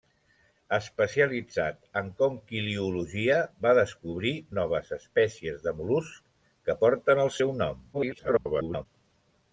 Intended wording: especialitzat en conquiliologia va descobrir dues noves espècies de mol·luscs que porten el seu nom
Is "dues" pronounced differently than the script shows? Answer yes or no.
yes